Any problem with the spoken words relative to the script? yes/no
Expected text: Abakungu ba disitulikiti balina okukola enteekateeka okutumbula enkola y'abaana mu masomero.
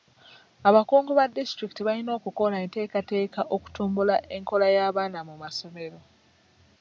no